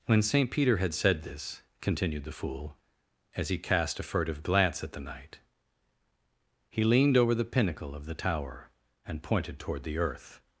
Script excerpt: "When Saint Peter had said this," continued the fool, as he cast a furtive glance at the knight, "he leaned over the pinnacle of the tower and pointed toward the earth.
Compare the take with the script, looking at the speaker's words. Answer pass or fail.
pass